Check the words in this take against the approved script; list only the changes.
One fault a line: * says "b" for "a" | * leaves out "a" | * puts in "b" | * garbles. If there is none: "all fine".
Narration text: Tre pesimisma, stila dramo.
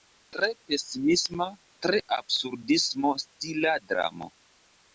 * puts in "tre absurdismo"